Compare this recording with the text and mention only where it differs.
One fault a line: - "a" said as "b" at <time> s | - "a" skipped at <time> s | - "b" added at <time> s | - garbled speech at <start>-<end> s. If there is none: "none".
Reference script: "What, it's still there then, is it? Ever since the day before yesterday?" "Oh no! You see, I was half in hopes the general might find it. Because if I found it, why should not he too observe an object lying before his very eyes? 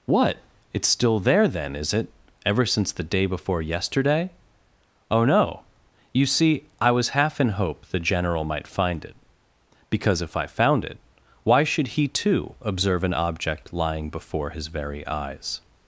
- "hopes" said as "hope" at 7.5 s
- "not" skipped at 11.9 s